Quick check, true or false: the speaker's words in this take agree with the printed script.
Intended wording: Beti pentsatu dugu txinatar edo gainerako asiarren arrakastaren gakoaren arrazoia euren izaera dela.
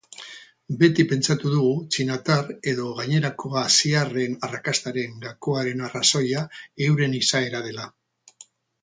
true